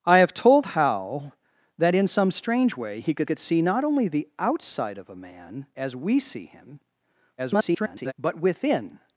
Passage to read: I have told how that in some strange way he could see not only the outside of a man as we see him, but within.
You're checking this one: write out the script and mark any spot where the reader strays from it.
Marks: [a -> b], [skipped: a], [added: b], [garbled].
I have told how that in some strange way he could [added: could] see not only the outside of a man as we see him, [garbled] but within.